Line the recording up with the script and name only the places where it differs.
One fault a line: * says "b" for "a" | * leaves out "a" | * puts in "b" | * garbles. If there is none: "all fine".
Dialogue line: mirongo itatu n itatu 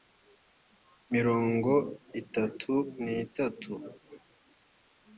all fine